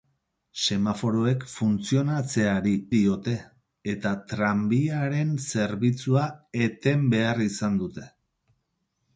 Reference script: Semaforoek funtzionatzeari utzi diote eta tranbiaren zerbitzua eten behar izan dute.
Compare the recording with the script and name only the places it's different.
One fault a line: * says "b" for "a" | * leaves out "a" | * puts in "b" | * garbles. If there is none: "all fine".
* leaves out "utzi"